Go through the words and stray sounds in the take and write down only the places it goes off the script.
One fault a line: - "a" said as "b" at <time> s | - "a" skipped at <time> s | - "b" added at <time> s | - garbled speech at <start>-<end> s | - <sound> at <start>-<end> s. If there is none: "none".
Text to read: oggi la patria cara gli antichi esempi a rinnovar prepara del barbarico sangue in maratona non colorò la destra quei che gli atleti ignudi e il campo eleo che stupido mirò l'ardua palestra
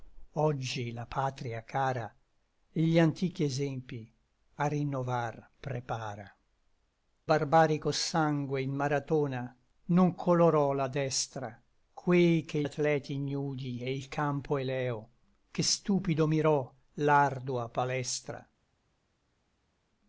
- "del" skipped at 6.3 s
- "gli" skipped at 12.6 s